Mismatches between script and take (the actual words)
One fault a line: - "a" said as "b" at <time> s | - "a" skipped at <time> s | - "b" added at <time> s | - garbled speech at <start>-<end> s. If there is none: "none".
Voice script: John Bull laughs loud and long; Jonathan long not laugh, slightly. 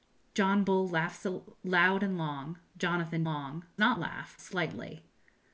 none